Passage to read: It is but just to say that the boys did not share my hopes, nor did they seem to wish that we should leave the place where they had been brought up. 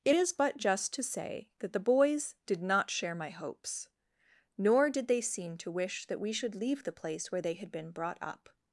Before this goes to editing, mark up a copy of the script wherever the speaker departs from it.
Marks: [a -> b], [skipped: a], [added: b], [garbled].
It is but just to say that the boys did not share my hopes, nor did they seem to wish that we should leave the place where they had been brought up.